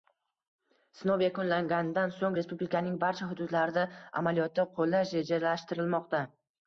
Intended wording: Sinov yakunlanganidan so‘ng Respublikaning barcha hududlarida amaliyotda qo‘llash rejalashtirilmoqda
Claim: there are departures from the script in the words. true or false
false